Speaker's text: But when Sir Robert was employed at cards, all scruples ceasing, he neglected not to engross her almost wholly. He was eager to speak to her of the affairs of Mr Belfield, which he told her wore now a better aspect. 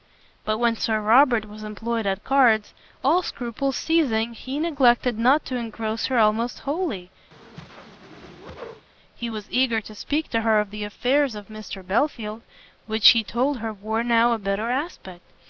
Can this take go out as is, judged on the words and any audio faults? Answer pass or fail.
fail